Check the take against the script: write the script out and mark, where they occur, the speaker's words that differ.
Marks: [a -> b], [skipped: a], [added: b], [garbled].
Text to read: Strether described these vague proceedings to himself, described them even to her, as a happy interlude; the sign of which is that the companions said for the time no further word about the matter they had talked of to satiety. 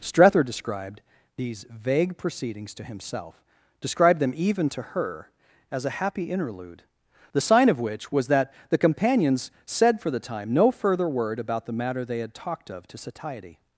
Strether described these vague proceedings to himself, described them even to her, as a happy interlude; the sign of which [is -> was] that the companions said for the time no further word about the matter they had talked of to satiety.